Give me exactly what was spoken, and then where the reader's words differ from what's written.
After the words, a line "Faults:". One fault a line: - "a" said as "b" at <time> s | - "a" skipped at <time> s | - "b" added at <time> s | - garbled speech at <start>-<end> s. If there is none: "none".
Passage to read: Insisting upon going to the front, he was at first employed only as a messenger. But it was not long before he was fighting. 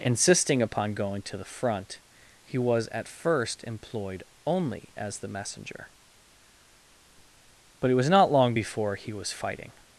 Insisting upon going to the front, he was at first employed only as the messenger. But it was not long before he was fighting.
Faults:
- "a" said as "the" at 5.2 s